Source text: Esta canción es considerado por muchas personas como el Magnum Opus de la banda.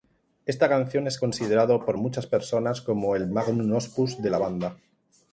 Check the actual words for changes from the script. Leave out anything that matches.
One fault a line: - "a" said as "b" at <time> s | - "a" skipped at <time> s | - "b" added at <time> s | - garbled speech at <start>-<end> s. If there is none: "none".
none